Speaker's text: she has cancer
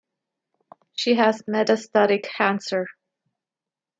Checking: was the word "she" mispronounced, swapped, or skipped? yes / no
no